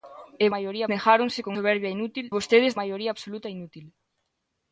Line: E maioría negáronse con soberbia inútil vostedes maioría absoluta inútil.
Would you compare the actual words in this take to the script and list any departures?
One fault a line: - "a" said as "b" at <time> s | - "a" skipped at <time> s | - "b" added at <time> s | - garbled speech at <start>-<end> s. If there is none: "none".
none